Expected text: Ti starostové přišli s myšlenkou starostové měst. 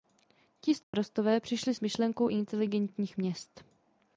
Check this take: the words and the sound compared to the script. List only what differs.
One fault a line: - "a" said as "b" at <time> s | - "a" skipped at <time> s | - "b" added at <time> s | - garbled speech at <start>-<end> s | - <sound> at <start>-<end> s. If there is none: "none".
- dropout at 0.8-0.9 s
- "starostové" said as "inteligentních" at 2.3 s